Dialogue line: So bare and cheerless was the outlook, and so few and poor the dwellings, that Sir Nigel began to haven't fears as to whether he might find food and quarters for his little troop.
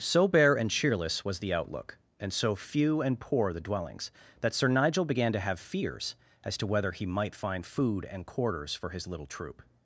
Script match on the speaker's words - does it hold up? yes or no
no